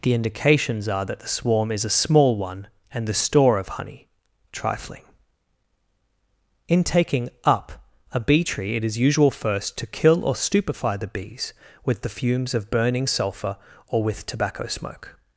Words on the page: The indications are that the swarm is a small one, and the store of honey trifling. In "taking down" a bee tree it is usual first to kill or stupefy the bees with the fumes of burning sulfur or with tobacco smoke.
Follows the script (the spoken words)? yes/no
no